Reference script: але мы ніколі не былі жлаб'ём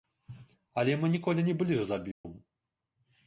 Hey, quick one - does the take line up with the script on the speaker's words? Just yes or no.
yes